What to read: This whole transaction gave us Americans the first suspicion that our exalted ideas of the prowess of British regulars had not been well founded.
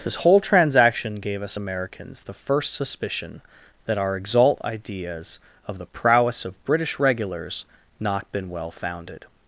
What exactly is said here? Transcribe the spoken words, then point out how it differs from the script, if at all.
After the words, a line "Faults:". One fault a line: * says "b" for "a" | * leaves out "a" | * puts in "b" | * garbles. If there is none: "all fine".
This whole transaction gave us Americans the first suspicion that our exalt ideas of the prowess of British regulars not been well founded.
Faults:
* says "exalt" for "exalted"
* leaves out "had"